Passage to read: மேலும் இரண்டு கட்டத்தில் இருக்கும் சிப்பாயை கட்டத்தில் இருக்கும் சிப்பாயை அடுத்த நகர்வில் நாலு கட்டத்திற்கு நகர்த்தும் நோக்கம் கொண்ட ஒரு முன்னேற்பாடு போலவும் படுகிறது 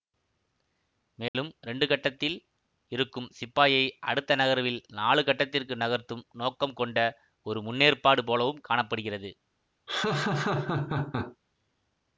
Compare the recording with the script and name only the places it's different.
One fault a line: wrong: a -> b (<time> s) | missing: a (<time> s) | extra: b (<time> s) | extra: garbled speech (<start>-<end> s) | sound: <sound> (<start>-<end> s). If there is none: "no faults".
sound: dropout (1.3-1.3 s)
missing: கட்டத்தில் இருக்கும் சிப்பாயை (3.8 s)
extra: காண (8.6 s)
sound: laugh (9.9-11.4 s)